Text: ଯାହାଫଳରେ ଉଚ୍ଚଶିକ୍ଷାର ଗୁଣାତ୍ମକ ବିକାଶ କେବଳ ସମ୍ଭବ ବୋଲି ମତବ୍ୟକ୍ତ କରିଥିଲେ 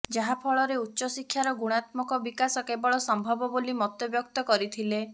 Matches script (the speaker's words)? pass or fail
pass